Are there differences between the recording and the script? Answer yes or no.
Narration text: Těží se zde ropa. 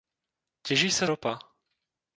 yes